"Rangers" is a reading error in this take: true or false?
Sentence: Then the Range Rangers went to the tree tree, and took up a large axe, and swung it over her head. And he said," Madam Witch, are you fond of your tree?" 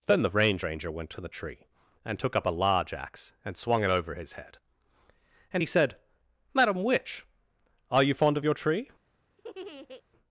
true